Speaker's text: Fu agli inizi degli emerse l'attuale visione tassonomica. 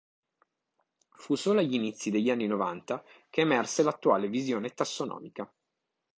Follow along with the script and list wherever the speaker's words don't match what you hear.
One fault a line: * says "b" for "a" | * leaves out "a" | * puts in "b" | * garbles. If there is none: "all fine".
* puts in "solo"
* puts in "anni novanta che"